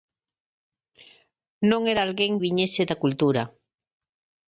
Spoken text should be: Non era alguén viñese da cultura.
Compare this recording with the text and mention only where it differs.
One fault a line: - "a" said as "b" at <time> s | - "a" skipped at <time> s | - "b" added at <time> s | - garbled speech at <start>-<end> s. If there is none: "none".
none